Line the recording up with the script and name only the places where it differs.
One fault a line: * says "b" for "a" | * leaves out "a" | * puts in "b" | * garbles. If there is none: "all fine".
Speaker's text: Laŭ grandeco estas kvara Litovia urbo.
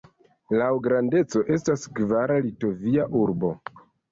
all fine